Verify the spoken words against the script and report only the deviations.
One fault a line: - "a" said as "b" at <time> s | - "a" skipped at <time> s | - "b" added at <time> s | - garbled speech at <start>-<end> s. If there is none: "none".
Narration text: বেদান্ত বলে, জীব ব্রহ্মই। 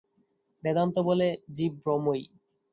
none